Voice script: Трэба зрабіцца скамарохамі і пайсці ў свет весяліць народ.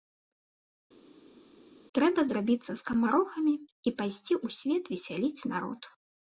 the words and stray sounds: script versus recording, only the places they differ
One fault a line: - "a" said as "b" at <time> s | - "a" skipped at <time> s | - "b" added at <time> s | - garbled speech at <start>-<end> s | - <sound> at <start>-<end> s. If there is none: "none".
none